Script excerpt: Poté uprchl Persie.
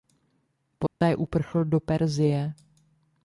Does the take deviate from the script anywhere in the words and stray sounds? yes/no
yes